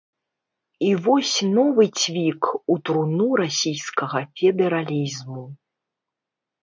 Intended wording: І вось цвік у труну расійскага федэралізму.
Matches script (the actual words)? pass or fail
fail